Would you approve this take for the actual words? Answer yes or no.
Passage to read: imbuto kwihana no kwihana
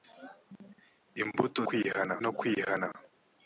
yes